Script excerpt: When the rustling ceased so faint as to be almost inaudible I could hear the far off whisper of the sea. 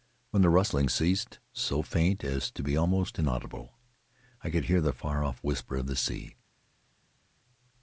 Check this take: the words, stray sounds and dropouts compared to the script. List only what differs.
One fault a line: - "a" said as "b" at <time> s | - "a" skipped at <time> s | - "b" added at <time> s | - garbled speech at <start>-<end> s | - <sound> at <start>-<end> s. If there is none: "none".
none